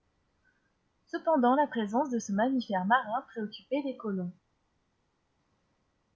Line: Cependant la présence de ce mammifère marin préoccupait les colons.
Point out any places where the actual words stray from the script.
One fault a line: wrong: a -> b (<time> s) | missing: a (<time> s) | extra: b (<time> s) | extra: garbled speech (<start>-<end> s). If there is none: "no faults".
no faults